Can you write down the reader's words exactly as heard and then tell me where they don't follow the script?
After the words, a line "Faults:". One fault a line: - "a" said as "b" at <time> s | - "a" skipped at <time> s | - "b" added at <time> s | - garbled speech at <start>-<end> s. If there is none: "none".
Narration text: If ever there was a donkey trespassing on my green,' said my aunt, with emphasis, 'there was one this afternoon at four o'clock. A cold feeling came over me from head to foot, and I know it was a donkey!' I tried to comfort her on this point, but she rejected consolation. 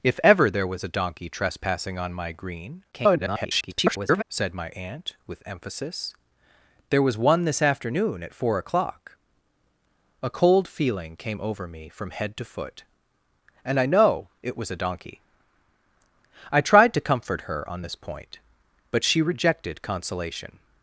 If ever there was a donkey trespassing on my green,' [garbled] said my aunt, with emphasis, 'there was one this afternoon at four o'clock. A cold feeling came over me from head to foot, and I know it was a donkey!' I tried to comfort her on this point, but she rejected consolation.
Faults:
- garbled speech at 2.9-4.2 s